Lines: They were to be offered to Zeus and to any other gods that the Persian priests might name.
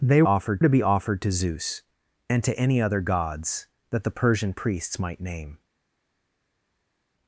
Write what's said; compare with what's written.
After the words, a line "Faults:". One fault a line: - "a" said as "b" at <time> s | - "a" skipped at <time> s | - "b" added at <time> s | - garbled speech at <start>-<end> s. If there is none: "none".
They offered to be offered to Zeus and to any other gods that the Persian priests might name.
Faults:
- "were" said as "offered" at 0.2 s